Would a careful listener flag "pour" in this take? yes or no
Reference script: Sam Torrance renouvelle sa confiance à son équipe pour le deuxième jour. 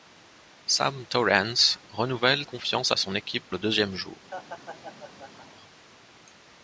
yes